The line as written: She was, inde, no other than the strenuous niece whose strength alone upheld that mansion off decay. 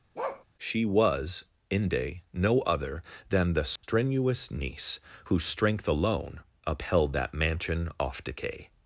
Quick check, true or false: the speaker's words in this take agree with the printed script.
true